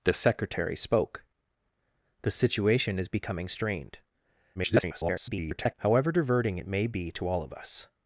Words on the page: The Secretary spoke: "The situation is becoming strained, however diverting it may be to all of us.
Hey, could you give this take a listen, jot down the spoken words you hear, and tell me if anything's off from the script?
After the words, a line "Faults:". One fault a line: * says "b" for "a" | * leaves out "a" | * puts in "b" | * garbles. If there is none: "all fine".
The Secretary spoke: "The situation is becoming strained, [garbled] however diverting it may be to all of us.
Faults:
* garbles